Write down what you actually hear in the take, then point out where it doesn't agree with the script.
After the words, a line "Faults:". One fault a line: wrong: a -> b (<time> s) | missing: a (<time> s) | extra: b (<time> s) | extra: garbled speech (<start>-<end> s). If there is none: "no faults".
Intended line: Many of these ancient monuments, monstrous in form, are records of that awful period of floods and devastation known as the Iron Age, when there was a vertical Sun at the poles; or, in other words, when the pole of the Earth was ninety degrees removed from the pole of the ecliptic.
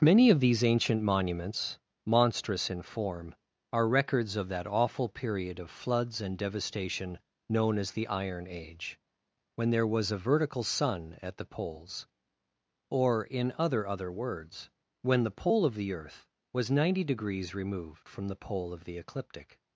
Many of these ancient monuments, monstrous in form, are records of that awful period of floods and devastation known as the Iron Age, when there was a vertical Sun at the poles; or, in other other words, when the pole of the Earth was ninety degrees removed from the pole of the ecliptic.
Faults:
extra: other (13.9 s)